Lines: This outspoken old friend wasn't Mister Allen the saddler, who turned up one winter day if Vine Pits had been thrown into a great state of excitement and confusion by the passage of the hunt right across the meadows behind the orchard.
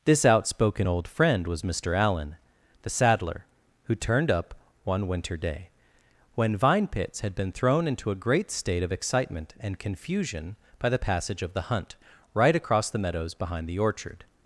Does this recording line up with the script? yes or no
no